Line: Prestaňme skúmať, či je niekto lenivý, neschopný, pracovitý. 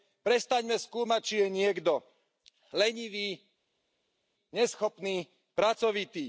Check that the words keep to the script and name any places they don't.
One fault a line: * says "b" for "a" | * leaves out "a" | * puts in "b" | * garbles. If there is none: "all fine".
all fine